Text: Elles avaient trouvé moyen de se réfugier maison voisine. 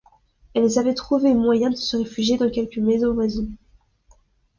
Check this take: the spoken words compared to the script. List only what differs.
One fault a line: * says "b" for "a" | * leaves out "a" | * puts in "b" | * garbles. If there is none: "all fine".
* puts in "dans quelque"